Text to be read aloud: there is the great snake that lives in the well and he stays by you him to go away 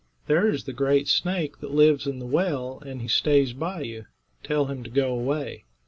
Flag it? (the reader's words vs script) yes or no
yes